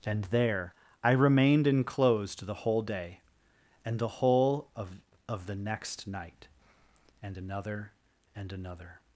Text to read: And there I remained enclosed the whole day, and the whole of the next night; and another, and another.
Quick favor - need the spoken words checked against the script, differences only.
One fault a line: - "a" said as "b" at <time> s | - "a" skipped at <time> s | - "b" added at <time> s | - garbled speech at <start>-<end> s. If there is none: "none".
- "of" added at 5.3 s